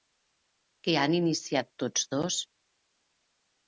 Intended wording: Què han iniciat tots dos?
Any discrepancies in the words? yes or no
no